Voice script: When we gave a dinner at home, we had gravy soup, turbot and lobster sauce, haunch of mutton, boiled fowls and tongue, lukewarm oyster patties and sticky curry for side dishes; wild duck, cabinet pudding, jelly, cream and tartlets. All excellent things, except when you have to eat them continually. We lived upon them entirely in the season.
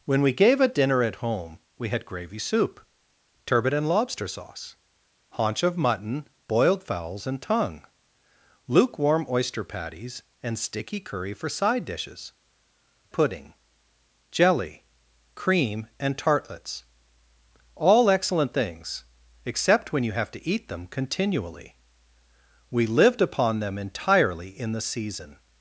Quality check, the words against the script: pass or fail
fail